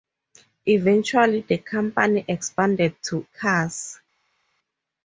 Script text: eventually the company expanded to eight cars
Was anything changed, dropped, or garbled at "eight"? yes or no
yes